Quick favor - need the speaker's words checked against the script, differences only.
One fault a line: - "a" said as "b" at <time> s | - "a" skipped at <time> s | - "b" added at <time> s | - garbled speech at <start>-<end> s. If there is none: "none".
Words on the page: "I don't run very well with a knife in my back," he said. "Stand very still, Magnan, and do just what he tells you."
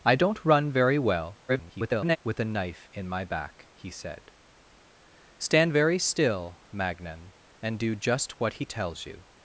- garbled speech at 1.5-2.2 s